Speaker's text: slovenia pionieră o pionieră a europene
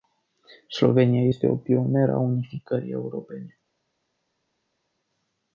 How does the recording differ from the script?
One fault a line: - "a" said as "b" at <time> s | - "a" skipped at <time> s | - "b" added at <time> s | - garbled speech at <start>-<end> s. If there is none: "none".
- "pionieră" said as "este" at 1.3 s
- "unificării" added at 2.2 s